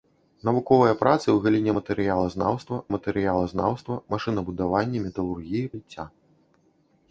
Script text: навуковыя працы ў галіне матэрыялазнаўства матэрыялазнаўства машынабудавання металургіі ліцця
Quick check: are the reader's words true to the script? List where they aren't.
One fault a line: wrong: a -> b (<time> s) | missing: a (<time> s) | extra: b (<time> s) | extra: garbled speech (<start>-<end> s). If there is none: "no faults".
no faults